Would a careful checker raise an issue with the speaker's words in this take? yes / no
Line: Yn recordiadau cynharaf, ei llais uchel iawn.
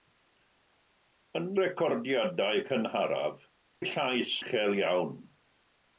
no